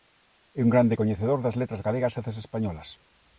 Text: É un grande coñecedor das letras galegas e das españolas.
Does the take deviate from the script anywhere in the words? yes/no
no